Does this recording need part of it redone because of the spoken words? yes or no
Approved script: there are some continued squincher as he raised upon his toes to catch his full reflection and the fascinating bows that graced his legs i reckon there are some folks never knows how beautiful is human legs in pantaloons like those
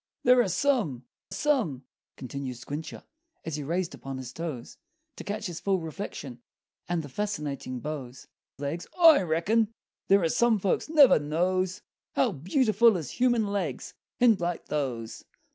yes